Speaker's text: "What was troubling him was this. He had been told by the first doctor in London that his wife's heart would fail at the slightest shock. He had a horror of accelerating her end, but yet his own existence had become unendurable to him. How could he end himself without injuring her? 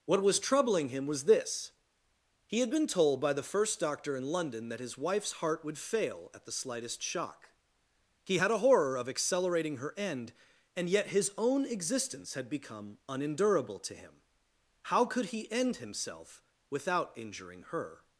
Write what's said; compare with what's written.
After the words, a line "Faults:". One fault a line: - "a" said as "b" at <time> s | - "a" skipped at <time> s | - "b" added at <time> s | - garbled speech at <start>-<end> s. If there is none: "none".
"What was troubling him was this. He had been told by the first doctor in London that his wife's heart would fail at the slightest shock. He had a horror of accelerating her end, and yet his own existence had become unendurable to him. How could he end himself without injuring her?
Faults:
- "but" said as "and" at 10.8 s